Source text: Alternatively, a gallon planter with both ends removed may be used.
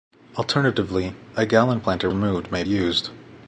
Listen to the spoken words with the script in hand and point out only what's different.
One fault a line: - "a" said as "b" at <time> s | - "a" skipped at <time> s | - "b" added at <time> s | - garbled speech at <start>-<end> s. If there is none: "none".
- "with both ends" skipped at 2.1 s
- "be" skipped at 2.6 s